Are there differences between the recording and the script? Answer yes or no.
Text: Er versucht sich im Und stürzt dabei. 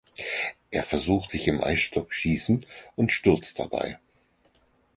yes